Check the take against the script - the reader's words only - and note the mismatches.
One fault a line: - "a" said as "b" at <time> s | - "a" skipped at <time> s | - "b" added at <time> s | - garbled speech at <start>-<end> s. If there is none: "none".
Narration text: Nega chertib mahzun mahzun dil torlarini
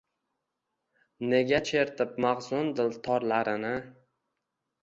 - "mahzun" skipped at 2.7 s